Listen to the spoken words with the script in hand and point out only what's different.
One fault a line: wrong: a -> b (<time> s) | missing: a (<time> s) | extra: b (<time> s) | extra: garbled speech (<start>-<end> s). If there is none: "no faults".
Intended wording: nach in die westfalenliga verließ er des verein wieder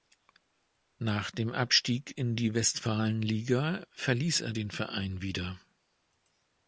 extra: dem abstieg (1.3 s)
wrong: des -> den (4.5 s)